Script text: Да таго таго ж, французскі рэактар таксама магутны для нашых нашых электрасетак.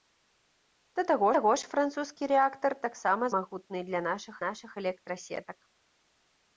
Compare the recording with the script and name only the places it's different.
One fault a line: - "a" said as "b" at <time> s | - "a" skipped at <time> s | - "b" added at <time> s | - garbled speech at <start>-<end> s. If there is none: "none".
none